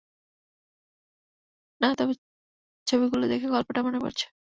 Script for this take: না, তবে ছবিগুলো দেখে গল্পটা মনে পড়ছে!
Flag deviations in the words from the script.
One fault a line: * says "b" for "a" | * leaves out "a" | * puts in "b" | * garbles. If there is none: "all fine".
all fine